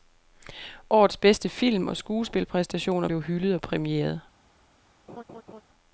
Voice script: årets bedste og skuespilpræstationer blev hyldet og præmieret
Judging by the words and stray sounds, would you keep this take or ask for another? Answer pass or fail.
fail